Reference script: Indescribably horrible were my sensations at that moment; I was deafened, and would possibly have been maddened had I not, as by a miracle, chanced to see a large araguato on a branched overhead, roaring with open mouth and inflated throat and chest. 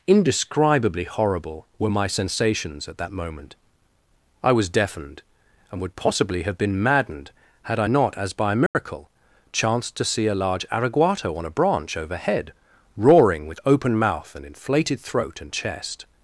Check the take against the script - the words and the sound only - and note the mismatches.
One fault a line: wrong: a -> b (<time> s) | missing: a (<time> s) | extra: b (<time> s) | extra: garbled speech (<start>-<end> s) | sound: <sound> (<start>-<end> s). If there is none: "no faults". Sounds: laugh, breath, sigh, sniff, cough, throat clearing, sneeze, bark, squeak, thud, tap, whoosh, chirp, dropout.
sound: dropout (8.7-8.8 s)
wrong: branched -> branch (11.5 s)